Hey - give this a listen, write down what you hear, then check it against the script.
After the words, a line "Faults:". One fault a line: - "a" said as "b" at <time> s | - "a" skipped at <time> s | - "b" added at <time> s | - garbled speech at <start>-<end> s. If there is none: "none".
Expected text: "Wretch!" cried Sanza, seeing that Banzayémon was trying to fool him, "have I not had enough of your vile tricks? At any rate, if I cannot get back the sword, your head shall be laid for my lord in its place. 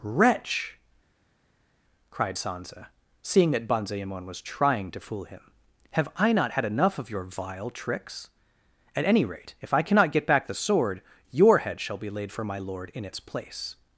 "Wretch!" cried Sanza, seeing that Banzayémon was trying to fool him, "have I not had enough of your vile tricks? At any rate, if I cannot get back the sword, your head shall be laid for my lord in its place.
Faults:
none